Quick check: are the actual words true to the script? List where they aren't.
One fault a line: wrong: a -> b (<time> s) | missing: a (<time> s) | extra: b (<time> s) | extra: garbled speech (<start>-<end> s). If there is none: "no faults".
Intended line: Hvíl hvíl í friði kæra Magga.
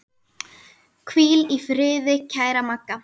missing: hvíl (1.4 s)